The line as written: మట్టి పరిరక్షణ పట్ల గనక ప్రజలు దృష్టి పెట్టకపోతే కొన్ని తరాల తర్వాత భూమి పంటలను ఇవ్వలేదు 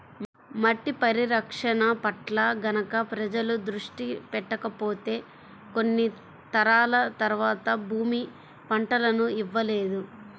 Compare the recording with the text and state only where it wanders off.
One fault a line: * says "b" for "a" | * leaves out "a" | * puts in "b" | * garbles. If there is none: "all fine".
all fine